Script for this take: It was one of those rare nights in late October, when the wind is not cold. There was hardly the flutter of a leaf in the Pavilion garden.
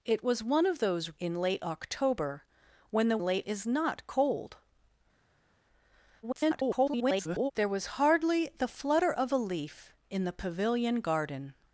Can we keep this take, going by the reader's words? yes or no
no